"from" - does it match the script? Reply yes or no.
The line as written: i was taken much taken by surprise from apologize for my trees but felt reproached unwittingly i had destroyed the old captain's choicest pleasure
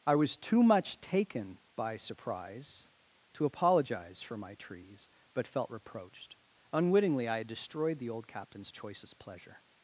no